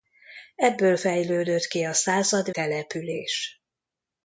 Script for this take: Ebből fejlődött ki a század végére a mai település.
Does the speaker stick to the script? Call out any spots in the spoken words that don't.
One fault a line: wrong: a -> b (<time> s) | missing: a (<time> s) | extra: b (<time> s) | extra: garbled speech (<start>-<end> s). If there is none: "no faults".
missing: végére a mai (2.5 s)